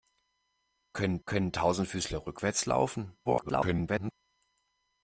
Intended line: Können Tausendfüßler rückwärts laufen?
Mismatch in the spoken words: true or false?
true